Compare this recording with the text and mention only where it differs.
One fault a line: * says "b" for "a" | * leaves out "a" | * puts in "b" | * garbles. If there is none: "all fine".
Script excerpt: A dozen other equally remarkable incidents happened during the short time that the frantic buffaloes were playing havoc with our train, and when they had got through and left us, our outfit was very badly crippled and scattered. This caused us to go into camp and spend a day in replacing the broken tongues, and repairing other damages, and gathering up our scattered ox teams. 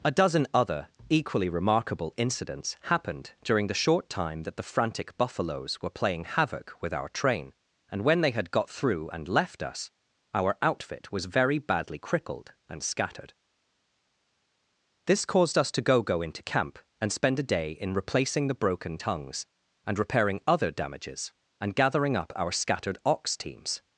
* puts in "go"